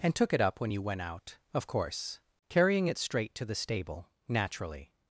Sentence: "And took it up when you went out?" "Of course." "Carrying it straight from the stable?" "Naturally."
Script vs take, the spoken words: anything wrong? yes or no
yes